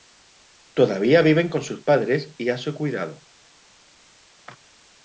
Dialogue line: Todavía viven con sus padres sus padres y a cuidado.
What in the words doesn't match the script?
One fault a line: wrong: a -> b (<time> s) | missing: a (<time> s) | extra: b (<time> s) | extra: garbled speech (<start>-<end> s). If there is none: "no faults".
missing: sus padres (2.3 s)
extra: su (2.6 s)